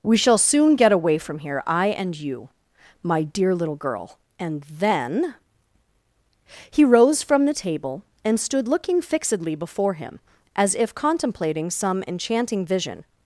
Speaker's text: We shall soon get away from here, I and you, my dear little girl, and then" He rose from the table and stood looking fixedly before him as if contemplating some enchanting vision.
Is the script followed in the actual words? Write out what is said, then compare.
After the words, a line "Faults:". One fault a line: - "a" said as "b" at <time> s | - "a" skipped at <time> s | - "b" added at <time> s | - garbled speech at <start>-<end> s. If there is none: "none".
We shall soon get away from here, I and you, my dear little girl, and then" He rose from the table and stood looking fixedly before him as if contemplating some enchanting vision.
Faults:
none